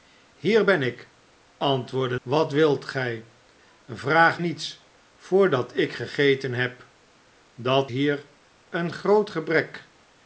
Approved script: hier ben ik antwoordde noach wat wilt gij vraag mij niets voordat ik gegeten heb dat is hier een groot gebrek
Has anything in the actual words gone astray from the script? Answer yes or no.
yes